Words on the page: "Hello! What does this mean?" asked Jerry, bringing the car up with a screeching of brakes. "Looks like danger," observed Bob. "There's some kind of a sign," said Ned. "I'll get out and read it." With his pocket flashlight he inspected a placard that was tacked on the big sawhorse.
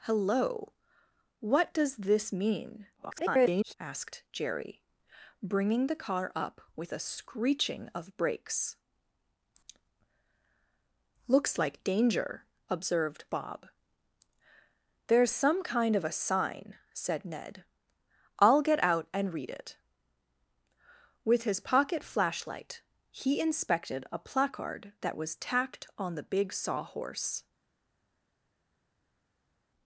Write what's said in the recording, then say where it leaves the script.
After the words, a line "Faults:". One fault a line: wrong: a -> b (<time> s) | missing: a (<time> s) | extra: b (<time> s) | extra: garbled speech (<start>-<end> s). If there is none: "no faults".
"Hello! What does this mean?" [garbled] asked Jerry, bringing the car up with a screeching of brakes. "Looks like danger," observed Bob. "There's some kind of a sign," said Ned. "I'll get out and read it." With his pocket flashlight he inspected a placard that was tacked on the big sawhorse.
Faults:
extra: garbled speech (3.0-3.7 s)